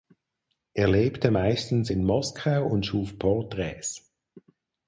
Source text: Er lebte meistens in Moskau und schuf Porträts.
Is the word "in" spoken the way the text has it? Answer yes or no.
yes